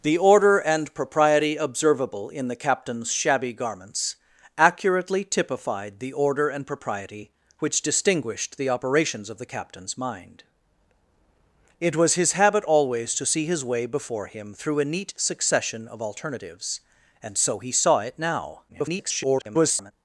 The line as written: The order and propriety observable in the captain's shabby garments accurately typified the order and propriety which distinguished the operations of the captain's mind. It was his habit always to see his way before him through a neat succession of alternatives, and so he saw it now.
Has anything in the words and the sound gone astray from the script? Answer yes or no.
yes